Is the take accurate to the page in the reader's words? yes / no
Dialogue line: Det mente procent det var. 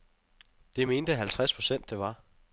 no